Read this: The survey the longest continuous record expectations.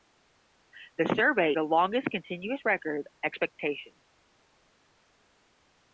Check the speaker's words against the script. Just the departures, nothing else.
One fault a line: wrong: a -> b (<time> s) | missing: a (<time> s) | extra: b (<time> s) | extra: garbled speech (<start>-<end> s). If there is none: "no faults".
no faults